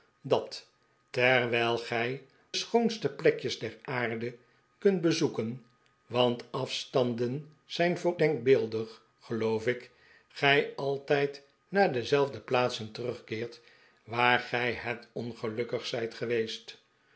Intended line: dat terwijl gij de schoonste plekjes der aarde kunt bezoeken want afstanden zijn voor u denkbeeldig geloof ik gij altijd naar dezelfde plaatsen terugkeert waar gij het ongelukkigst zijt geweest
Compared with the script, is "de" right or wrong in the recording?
wrong